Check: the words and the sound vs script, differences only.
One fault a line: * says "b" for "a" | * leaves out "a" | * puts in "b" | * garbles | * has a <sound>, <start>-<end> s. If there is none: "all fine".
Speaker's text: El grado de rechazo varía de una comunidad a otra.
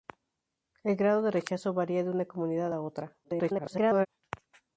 * garbles